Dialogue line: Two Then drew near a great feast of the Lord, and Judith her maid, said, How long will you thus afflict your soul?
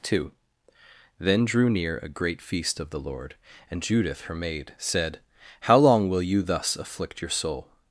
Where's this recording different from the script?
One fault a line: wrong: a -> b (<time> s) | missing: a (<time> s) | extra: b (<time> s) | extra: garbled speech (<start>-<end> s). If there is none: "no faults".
no faults